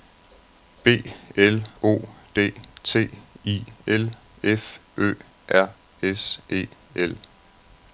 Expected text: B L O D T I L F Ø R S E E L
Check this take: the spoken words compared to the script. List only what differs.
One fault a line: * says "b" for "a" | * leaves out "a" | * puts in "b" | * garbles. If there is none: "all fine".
* leaves out "E"